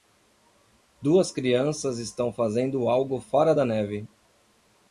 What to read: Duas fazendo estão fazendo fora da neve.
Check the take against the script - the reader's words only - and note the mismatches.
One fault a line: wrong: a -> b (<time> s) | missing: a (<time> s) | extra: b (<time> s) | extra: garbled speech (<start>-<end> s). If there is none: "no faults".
wrong: fazendo -> crianças (1.3 s)
extra: algo (2.9 s)